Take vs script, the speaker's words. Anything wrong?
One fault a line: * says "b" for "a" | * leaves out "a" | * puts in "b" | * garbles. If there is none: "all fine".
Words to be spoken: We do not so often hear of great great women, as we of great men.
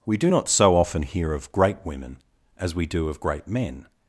* leaves out "great"
* puts in "do"